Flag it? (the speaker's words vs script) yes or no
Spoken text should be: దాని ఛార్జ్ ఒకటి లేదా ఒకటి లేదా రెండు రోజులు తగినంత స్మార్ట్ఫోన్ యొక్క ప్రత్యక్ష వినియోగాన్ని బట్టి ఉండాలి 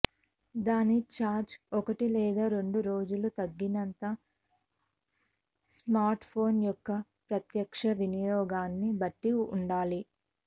yes